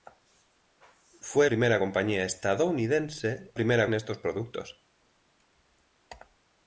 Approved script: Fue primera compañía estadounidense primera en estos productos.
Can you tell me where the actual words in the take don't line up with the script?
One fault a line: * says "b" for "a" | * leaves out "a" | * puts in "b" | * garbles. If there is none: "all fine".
all fine